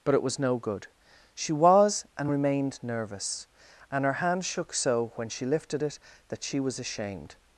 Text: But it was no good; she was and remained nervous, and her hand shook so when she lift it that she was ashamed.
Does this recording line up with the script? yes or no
no